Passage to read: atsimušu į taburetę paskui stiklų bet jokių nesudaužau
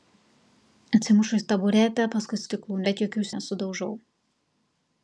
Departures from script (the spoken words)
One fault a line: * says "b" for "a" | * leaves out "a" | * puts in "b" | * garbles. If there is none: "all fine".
all fine